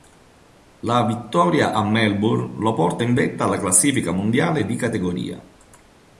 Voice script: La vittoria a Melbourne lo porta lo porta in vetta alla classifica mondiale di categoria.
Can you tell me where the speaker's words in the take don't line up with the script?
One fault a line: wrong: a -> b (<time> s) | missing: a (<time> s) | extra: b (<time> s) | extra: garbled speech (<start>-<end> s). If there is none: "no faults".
missing: lo porta (3.0 s)